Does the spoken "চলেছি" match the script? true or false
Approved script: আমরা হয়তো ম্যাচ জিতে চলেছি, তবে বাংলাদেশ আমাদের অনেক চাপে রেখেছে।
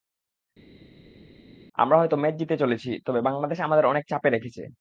true